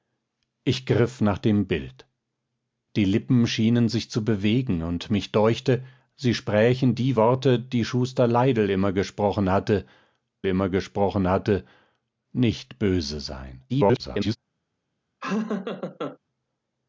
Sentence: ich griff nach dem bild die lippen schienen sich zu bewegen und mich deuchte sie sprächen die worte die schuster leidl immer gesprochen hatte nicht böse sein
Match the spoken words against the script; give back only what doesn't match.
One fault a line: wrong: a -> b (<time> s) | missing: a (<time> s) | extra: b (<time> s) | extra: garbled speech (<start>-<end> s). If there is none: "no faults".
extra: immer gesprochen hatte (10.4 s)
extra: garbled speech (13.7-14.4 s)